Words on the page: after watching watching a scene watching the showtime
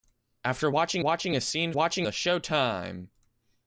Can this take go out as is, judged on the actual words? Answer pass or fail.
pass